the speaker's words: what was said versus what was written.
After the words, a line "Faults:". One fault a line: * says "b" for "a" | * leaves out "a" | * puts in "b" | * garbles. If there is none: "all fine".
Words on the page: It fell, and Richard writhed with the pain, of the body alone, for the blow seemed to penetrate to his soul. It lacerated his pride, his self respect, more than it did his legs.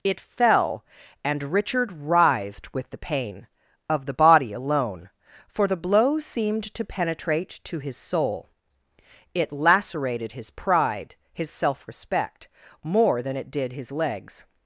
It fell, and Richard writhed with the pain, of the body alone, for the blow seemed to penetrate to his soul. It lacerated his pride, his self respect, more than it did his legs.
Faults:
all fine